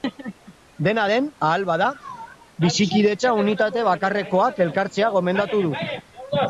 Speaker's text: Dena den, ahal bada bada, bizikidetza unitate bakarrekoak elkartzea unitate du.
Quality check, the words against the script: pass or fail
fail